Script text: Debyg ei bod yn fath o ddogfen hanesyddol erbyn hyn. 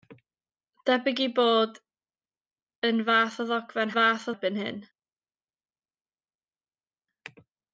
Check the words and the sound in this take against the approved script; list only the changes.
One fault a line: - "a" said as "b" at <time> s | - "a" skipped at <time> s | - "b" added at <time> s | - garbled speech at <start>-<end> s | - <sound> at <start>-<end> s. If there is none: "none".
- "hanesyddol" said as "fath" at 4.0 s